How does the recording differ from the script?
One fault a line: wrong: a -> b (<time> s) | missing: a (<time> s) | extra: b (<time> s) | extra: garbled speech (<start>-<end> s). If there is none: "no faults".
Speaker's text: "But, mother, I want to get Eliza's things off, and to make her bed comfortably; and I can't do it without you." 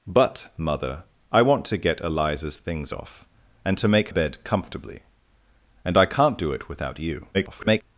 missing: her (4.1 s)
extra: garbled speech (7.3-7.8 s)